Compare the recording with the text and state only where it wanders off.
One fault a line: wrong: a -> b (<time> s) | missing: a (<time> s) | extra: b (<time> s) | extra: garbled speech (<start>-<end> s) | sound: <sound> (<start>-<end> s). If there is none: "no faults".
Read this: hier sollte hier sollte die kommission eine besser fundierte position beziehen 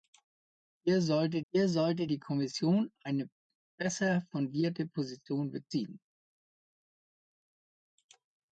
no faults